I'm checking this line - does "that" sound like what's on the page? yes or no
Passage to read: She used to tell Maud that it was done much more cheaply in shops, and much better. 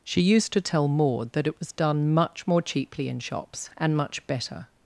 yes